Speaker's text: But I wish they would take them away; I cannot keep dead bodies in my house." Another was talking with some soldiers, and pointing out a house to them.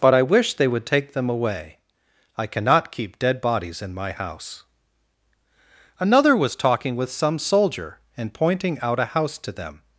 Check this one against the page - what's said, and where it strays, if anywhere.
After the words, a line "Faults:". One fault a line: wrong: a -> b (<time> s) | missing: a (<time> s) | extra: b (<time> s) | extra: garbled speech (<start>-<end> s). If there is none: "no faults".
But I wish they would take them away; I cannot keep dead bodies in my house." Another was talking with some soldier, and pointing out a house to them.
Faults:
wrong: soldiers -> soldier (7.4 s)